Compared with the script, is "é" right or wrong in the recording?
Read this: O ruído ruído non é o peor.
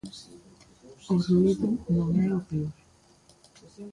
right